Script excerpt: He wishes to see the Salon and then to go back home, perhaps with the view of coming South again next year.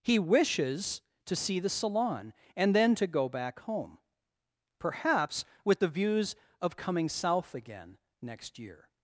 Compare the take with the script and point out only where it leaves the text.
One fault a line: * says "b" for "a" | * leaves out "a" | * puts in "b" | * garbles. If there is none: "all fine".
* says "views" for "view"